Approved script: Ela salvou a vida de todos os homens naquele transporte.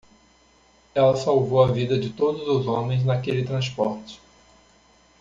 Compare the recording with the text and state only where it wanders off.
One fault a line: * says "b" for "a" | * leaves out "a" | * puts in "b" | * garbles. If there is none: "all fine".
all fine